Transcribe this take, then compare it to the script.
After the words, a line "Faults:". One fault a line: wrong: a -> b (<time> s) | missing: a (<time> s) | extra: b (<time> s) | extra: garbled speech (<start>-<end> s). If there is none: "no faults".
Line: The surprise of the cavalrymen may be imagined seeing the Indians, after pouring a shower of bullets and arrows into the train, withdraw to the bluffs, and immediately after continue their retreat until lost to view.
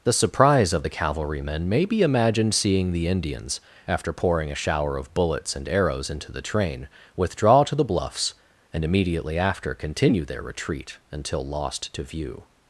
The surprise of the cavalrymen may be imagined seeing the Indians, after pouring a shower of bullets and arrows into the train, withdraw to the bluffs, and immediately after continue their retreat until lost to view.
Faults:
no faults